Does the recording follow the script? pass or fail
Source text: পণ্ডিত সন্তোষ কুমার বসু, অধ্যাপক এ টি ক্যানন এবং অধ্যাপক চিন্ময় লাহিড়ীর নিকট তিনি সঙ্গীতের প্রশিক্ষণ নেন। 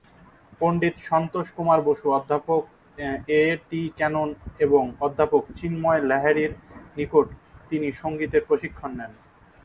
pass